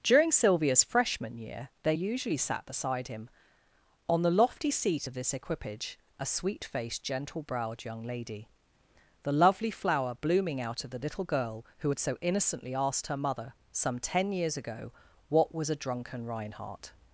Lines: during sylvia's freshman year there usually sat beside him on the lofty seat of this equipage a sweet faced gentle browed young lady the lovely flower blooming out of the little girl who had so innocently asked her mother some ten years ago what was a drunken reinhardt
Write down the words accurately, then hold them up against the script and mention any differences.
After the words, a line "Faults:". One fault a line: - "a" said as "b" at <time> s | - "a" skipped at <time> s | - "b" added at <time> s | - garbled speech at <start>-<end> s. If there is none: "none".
during sylvia's freshman year they usually sat beside him on the lofty seat of this equipage a sweet faced gentle browed young lady the lovely flower blooming out of the little girl who had so innocently asked her mother some ten years ago what was a drunken reinhardt
Faults:
- "there" said as "they" at 1.8 s